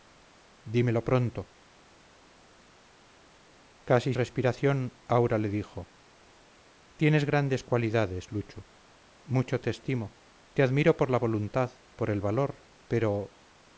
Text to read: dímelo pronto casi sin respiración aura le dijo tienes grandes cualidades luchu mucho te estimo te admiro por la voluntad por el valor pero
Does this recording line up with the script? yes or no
no